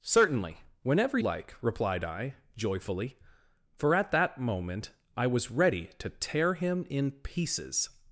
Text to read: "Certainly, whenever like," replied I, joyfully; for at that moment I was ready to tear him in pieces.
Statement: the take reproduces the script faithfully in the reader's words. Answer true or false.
true